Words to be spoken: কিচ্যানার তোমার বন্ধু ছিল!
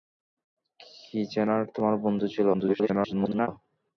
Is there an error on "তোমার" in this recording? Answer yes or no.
no